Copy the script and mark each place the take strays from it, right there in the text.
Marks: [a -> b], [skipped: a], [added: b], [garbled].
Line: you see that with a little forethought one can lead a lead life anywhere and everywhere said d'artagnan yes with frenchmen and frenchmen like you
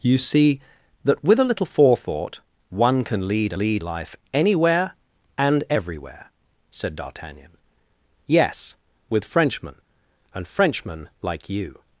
you see that with a little forethought one can lead a lead life anywhere and everywhere said d'artagnan yes with frenchmen and frenchmen like you